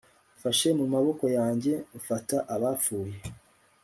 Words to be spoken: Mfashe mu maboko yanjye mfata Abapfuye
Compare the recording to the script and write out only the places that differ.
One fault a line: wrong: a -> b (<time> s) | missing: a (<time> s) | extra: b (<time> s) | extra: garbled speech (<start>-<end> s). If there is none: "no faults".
no faults